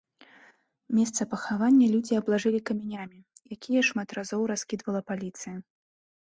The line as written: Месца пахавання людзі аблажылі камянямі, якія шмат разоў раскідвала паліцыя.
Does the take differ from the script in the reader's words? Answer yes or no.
no